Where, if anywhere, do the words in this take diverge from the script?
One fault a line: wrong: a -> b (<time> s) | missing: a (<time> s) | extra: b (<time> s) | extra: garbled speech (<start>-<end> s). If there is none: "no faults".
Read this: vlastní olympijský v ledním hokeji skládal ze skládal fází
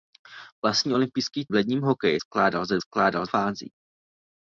no faults